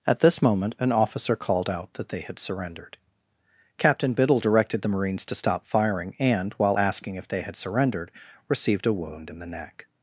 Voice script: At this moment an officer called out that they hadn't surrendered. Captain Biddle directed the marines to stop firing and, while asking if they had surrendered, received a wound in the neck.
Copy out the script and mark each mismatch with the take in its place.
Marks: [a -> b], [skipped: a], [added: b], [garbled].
At this moment an officer called out that they [hadn't -> had] surrendered. Captain Biddle directed the marines to stop firing and, while asking if they had surrendered, received a wound in the neck.